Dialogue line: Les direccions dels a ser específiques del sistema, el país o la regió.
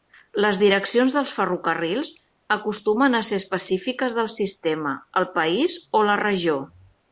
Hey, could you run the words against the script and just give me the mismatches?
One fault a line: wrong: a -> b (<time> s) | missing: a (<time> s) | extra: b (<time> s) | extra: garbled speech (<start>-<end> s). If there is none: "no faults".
extra: ferrocarrils acostumen (1.4 s)